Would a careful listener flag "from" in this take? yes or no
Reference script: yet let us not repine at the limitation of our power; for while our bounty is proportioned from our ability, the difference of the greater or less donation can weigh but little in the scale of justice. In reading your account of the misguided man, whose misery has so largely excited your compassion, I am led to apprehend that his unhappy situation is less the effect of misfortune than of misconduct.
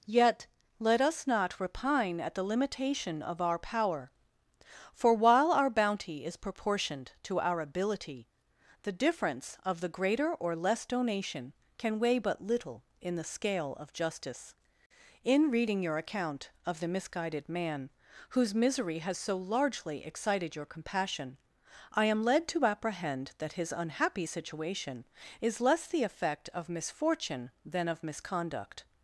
yes